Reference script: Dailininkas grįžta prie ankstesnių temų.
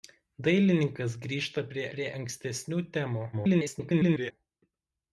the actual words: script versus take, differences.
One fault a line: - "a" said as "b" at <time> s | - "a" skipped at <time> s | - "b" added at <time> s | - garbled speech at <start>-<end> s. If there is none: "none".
- "prie" added at 2.0 s
- garbled speech at 3.3-4.3 s